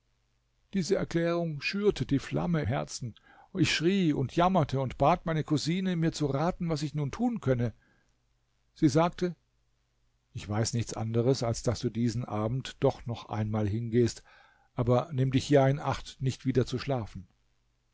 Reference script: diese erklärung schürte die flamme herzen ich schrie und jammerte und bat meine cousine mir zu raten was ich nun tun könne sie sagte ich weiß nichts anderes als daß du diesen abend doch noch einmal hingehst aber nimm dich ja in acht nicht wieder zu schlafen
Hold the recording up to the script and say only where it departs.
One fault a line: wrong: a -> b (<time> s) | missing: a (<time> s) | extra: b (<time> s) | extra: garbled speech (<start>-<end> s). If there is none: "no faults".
no faults